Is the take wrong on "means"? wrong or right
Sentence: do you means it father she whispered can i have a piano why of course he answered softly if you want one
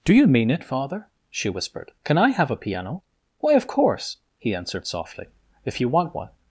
wrong